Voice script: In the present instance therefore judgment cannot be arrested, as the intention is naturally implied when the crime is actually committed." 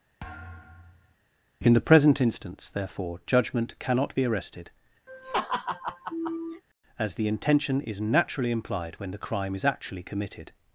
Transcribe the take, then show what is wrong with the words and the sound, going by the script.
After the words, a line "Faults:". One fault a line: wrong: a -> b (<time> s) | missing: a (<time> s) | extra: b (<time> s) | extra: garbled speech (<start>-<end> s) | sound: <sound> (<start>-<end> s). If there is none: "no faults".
In the present instance therefore judgment cannot be arrested, as the intention is naturally implied when the crime is actually committed."
Faults:
sound: thud (0.2-1.2 s)
sound: laugh (5.1-6.6 s)